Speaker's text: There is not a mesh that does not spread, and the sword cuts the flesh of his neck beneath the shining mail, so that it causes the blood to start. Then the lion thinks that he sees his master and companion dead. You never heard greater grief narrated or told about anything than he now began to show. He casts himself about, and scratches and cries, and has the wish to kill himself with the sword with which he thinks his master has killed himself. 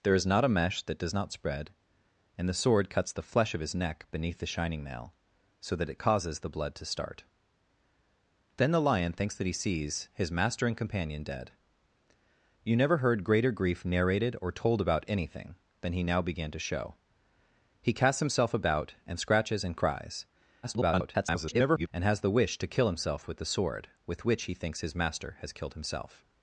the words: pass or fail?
fail